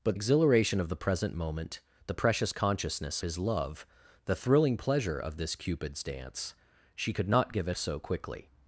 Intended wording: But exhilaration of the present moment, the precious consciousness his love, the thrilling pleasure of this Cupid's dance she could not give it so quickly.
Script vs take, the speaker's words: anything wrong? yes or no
no